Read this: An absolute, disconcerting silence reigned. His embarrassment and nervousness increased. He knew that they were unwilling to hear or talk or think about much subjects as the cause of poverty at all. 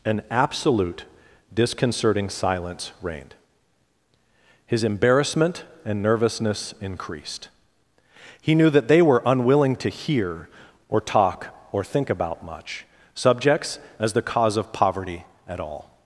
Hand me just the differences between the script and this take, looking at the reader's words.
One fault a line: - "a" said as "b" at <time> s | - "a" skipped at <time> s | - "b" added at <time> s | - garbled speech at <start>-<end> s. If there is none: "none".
none